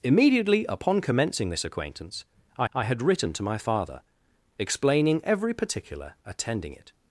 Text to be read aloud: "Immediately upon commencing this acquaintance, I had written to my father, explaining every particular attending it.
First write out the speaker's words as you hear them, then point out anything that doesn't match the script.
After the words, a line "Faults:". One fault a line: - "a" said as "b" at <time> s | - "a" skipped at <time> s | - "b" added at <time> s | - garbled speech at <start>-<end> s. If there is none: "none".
"Immediately upon commencing this acquaintance, I I had written to my father, explaining every particular attending it.
Faults:
- "I" added at 2.7 s